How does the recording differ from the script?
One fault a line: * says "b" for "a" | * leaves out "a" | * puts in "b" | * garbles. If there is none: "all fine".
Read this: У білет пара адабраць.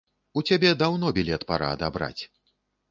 * puts in "цябе даўно"